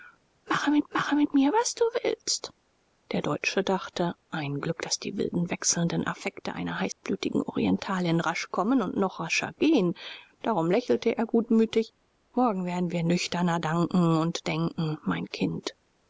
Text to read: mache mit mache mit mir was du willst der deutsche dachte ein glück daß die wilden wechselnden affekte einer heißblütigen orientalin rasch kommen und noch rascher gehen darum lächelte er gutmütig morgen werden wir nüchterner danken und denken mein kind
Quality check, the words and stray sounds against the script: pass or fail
fail